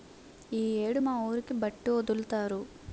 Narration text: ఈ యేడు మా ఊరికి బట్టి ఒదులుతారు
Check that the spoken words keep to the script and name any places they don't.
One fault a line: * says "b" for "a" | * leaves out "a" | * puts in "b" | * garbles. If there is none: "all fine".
all fine